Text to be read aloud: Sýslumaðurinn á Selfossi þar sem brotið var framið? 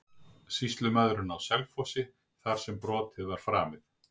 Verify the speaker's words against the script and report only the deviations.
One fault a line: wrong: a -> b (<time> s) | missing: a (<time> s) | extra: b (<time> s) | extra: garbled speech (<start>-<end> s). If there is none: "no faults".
no faults